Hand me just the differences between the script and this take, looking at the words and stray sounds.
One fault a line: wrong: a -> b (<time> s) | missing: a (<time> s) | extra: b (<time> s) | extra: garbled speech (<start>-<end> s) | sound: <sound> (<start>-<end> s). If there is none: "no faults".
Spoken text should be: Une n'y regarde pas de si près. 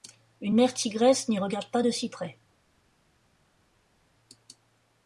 extra: mère tigresse (0.5 s)